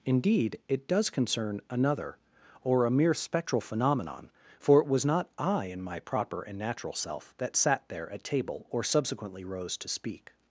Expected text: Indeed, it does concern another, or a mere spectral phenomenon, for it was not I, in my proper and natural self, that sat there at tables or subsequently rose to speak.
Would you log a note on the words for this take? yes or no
yes